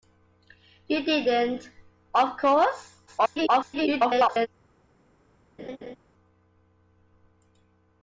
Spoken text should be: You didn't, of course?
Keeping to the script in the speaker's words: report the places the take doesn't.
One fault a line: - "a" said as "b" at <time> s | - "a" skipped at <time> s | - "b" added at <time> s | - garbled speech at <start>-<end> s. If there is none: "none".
- garbled speech at 3.1-4.5 s